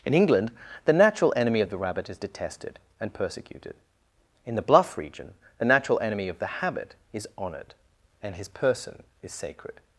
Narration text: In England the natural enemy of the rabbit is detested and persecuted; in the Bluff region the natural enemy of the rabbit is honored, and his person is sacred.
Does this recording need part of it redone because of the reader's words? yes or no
yes